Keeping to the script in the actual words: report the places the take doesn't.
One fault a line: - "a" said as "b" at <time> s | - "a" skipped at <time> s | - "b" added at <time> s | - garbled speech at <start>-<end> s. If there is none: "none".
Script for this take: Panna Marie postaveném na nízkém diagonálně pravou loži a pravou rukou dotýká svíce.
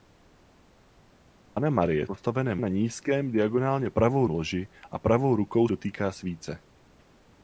none